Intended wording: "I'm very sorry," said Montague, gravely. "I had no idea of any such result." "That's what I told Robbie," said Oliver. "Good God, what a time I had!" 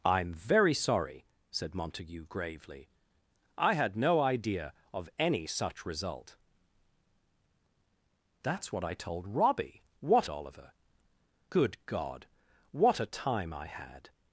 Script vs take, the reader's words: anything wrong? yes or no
yes